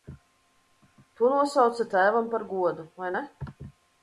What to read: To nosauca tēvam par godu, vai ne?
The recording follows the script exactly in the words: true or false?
true